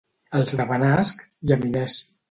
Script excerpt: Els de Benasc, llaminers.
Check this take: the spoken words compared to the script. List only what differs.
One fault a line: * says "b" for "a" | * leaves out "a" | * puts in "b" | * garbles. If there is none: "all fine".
all fine